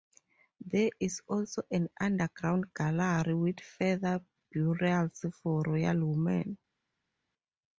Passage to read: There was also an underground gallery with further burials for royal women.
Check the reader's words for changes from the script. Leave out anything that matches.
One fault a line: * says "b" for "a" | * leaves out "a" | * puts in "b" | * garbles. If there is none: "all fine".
* says "is" for "was"